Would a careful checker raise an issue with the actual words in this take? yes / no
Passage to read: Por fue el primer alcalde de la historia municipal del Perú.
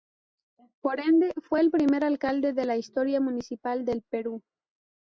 yes